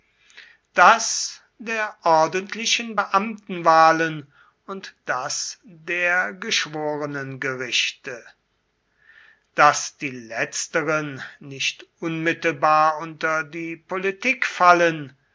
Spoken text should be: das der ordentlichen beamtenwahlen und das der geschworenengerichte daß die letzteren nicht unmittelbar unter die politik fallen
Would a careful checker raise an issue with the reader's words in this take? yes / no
no